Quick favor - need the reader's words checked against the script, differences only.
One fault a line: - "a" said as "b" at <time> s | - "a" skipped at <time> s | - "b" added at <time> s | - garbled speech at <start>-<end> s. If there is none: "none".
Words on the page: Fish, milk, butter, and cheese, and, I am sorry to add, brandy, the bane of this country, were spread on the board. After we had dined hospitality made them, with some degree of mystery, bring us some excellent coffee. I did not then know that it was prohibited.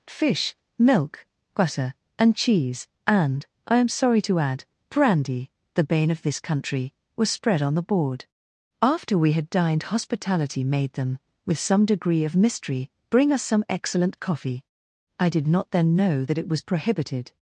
- "were" said as "was" at 7.2 s